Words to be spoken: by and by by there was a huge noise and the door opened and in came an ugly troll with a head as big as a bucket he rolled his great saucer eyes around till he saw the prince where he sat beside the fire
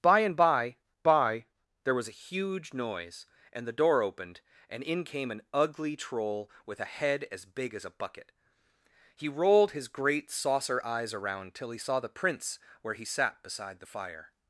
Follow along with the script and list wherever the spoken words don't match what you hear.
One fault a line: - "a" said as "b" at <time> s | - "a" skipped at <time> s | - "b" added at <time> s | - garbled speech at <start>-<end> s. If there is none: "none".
none